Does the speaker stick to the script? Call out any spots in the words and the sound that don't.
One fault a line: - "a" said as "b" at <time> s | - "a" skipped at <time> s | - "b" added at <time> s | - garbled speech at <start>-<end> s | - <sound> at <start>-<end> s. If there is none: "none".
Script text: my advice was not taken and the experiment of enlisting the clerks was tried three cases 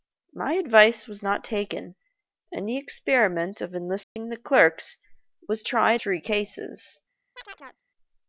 - dropout at 4.0-4.2 s
- chirp at 7.4-7.8 s